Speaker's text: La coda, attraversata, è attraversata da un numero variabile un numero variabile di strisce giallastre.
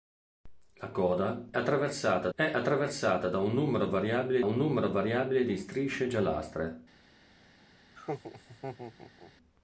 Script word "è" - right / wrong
right